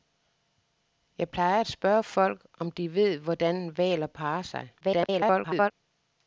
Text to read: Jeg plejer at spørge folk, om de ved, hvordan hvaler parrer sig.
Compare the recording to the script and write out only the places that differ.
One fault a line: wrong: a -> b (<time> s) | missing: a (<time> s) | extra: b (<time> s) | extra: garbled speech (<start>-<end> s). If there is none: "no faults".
extra: garbled speech (4.8-5.7 s)